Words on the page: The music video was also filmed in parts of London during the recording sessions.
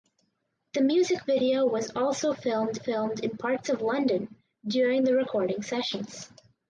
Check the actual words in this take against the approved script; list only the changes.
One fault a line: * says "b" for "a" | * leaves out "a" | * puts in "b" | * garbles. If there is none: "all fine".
* puts in "filmed"